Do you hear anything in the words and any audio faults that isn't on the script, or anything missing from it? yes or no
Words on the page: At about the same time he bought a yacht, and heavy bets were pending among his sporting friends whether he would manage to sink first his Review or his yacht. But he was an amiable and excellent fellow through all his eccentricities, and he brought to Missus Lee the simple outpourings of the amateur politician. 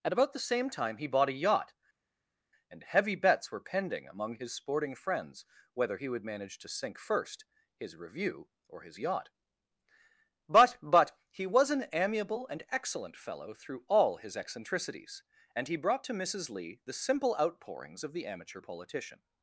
yes